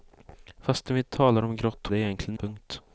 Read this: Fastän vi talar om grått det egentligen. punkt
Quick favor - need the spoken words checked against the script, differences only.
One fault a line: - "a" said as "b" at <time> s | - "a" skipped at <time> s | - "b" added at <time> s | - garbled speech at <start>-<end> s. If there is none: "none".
none